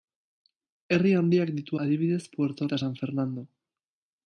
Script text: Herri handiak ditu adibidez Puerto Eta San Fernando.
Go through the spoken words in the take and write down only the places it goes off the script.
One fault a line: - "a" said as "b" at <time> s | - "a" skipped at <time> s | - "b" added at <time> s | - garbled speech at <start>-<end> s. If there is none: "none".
none